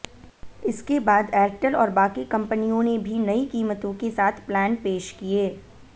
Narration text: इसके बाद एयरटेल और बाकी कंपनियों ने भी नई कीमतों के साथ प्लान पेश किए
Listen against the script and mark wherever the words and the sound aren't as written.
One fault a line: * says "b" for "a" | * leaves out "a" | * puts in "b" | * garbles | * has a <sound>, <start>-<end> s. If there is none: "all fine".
all fine